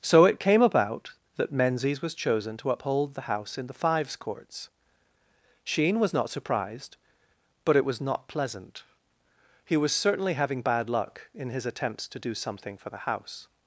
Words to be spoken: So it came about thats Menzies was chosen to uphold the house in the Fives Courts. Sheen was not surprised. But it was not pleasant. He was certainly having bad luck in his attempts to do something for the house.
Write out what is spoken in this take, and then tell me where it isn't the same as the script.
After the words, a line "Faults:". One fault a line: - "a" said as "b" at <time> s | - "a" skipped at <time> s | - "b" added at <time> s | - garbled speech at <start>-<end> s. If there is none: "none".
So it came about that Menzies was chosen to uphold the house in the Fives Courts. Sheen was not surprised. But it was not pleasant. He was certainly having bad luck in his attempts to do something for the house.
Faults:
- "thats" said as "that" at 1.4 s